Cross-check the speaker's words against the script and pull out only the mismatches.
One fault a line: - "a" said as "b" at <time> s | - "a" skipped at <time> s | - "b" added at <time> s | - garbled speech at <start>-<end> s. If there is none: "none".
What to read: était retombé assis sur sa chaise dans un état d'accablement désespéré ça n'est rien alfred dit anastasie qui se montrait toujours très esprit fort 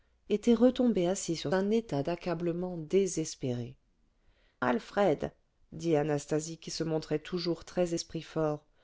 - "sa chaise dans" skipped at 1.5 s
- "ça n'est rien" skipped at 3.8 s